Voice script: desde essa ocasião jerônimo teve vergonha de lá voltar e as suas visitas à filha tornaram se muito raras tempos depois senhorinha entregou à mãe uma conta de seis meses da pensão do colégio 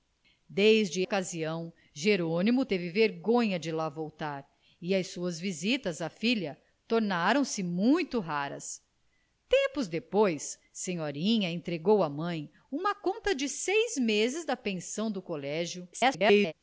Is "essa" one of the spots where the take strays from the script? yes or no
yes